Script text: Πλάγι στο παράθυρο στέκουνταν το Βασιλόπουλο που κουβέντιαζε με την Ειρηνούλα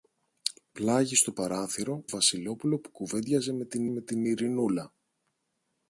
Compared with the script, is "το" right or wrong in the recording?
wrong